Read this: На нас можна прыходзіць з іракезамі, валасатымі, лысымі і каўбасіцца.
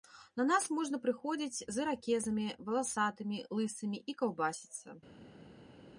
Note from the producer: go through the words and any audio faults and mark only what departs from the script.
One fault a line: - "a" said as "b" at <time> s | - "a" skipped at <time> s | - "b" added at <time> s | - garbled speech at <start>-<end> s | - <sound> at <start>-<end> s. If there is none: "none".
none